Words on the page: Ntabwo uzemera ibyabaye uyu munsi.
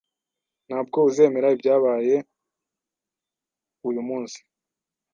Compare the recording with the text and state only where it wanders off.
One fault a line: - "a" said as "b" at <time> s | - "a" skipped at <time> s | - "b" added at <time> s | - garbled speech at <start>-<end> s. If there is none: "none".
none